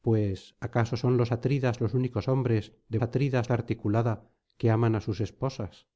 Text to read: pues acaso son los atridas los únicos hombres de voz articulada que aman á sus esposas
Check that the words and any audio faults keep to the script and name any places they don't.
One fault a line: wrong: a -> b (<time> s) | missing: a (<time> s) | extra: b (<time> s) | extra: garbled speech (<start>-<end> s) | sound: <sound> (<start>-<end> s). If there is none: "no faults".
wrong: voz -> atridas (3.0 s)